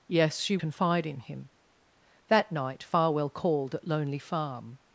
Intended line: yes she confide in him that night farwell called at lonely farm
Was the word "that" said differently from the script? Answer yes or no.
no